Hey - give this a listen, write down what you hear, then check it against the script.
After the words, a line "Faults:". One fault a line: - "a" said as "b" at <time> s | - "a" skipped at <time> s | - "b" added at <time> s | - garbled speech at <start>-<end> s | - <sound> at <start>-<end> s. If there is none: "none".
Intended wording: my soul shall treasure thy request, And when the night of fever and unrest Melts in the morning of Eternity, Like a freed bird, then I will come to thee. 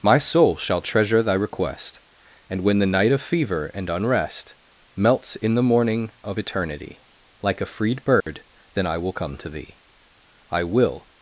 my soul shall treasure thy request, And when the night of fever and unrest Melts in the morning of Eternity, Like a freed bird, then I will come to thee. "I will
Faults:
- dropout at 8.2-8.3 s
- "I will" added at 10.5 s